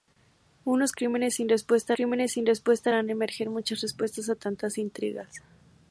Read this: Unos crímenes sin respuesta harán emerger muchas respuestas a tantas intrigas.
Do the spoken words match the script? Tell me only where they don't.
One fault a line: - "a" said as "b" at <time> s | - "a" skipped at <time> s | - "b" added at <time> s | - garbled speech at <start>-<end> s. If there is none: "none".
- "crímenes sin respuesta" added at 1.9 s